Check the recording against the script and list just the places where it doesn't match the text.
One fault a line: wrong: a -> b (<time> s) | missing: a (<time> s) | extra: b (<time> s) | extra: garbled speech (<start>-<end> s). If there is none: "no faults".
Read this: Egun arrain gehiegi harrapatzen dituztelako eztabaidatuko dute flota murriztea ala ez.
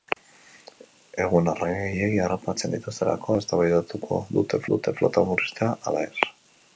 extra: dute (4.7 s)